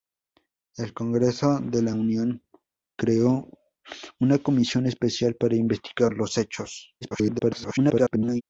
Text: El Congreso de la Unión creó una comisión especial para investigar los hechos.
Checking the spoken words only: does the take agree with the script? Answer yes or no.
no